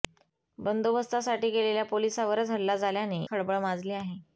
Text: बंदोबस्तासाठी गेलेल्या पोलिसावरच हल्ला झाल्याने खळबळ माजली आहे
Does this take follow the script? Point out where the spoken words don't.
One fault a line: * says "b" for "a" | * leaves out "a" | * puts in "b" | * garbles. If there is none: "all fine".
all fine